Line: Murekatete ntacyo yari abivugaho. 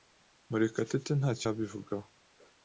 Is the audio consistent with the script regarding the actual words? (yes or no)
no